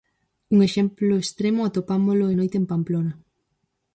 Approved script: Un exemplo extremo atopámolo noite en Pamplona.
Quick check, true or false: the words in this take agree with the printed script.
true